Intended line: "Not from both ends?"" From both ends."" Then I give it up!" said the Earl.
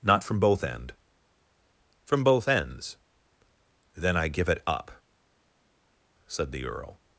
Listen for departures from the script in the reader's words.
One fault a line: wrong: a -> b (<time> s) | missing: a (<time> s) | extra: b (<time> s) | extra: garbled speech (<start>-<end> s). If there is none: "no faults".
wrong: ends -> end (0.6 s)